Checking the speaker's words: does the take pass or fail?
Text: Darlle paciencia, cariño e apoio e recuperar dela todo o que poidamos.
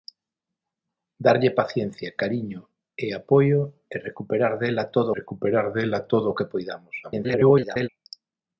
fail